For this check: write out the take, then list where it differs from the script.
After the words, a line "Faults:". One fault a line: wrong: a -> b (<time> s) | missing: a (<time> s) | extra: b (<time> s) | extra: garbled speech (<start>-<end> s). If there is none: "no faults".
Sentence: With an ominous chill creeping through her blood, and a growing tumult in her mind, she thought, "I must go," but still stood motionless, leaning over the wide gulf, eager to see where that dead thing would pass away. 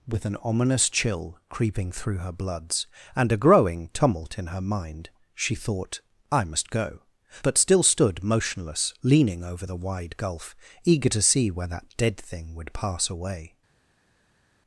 With an ominous chill creeping through her bloods, and a growing tumult in her mind, she thought, "I must go," but still stood motionless, leaning over the wide gulf, eager to see where that dead thing would pass away.
Faults:
wrong: blood -> bloods (2.3 s)